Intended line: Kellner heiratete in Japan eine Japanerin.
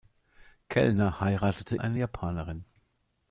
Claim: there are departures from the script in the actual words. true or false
true